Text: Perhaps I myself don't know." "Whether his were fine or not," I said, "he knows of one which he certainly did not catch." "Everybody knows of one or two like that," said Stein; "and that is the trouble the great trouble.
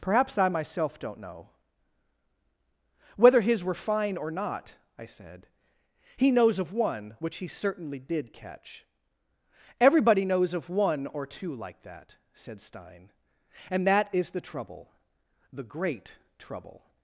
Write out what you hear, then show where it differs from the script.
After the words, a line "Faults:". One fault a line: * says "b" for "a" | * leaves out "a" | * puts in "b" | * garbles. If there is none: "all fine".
Perhaps I myself don't know." "Whether his were fine or not," I said, "he knows of one which he certainly did catch." "Everybody knows of one or two like that," said Stein; "and that is the trouble the great trouble.
Faults:
* leaves out "not"